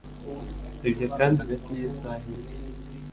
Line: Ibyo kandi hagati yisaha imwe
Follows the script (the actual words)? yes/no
yes